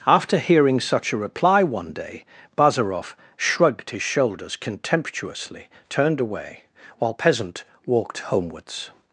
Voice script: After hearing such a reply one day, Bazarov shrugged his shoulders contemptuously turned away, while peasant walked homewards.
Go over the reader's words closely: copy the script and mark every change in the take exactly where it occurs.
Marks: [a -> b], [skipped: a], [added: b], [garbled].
After hearing such a reply one day, Bazarov shrugged his shoulders contemptuously turned away, while peasant walked homewards.